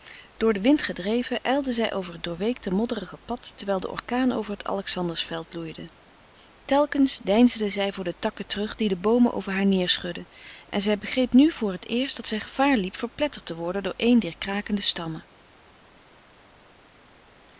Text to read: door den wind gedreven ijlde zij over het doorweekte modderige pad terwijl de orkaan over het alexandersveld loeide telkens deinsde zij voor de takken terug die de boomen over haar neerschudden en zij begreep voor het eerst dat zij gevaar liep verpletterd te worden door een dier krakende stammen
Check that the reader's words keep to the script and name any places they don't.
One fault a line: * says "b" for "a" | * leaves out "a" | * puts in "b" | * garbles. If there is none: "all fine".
* puts in "nu"